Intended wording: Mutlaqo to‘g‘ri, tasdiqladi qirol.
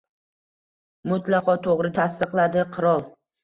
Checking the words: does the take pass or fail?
pass